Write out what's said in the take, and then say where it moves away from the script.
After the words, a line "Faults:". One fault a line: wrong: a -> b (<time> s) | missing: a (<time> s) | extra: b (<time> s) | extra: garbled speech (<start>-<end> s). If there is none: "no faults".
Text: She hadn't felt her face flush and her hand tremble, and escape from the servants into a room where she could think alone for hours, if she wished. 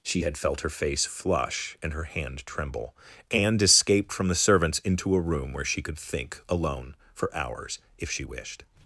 She had felt her face flush and her hand tremble, and escaped from the servants into a room where she could think alone for hours, if she wished.
Faults:
wrong: hadn't -> had (0.2 s)
wrong: escape -> escaped (3.6 s)